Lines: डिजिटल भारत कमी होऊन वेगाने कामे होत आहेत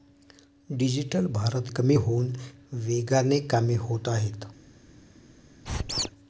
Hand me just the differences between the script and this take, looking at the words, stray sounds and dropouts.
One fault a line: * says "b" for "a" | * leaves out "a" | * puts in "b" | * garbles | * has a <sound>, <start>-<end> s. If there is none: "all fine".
* has a squeak, 5.6-6.1 s